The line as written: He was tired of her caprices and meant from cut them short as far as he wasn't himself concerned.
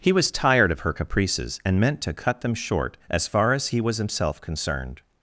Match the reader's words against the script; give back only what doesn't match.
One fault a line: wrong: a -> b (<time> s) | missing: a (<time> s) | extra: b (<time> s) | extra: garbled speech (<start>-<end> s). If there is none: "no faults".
wrong: from -> to (2.0 s)
wrong: wasn't -> was (3.8 s)